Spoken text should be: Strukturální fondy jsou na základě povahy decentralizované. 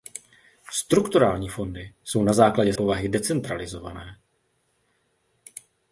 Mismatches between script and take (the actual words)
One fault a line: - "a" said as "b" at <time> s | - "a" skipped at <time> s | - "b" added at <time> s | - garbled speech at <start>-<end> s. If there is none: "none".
none